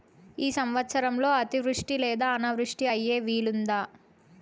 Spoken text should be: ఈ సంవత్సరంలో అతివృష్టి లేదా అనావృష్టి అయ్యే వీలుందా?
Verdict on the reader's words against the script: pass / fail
pass